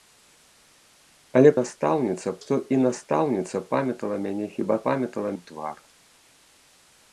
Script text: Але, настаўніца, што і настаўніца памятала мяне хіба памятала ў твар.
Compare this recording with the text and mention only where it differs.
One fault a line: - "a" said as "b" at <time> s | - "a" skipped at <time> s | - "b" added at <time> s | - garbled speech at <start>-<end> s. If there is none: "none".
none